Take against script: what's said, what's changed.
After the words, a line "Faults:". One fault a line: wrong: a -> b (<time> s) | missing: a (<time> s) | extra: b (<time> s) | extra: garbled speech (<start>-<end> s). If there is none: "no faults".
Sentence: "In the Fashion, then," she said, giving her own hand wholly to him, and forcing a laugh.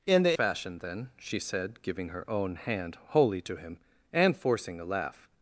"In the Fashion, then," she said, giving her own hand wholly to him, and forcing a laugh.
Faults:
no faults